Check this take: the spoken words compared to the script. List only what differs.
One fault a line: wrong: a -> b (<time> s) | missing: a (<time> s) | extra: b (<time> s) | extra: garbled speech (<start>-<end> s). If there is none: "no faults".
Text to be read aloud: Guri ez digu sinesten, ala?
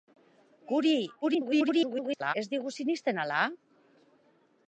extra: garbled speech (1.2-2.3 s)